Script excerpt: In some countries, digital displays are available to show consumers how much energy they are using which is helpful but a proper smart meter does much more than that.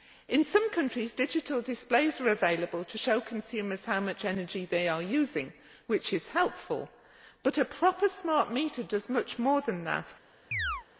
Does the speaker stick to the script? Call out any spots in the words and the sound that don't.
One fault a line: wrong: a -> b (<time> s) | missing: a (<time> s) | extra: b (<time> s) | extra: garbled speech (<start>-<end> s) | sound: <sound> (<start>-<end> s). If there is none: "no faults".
sound: chirp (10.5-10.8 s)